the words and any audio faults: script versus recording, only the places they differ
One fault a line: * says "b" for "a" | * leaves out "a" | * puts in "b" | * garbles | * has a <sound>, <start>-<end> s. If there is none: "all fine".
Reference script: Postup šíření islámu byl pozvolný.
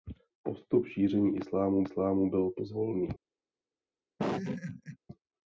* puts in "islámu"
* has a laugh, 4.2-5.0 s